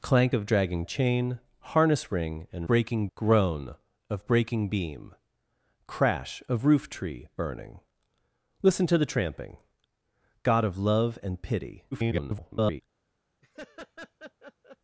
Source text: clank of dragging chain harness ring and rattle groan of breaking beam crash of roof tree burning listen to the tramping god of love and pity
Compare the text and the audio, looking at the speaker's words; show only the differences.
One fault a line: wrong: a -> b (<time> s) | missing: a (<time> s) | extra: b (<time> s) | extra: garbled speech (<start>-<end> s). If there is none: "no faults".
wrong: rattle -> breaking (2.7 s)
extra: garbled speech (11.9-12.8 s)